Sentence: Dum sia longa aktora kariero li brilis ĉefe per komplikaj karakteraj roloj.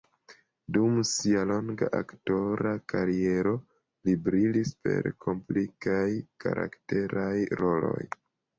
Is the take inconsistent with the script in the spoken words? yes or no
yes